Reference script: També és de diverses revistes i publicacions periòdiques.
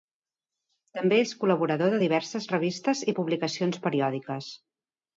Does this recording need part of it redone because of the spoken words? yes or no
yes